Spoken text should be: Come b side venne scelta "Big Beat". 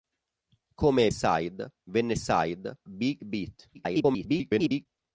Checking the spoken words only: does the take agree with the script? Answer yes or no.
no